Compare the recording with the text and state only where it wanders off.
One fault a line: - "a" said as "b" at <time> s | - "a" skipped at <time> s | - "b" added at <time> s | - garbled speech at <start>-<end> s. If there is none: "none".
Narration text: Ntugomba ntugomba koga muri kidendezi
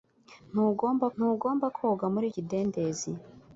none